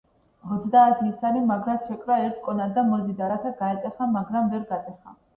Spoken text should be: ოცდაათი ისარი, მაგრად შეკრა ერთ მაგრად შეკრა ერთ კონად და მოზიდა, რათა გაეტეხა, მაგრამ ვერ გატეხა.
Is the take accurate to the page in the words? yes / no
no